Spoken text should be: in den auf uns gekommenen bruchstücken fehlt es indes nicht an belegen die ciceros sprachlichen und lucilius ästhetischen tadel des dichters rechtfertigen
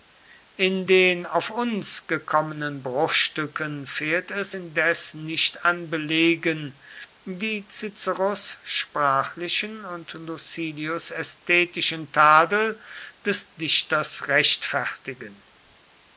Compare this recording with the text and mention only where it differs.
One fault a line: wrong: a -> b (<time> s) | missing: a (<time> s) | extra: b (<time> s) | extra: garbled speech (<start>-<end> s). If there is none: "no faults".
no faults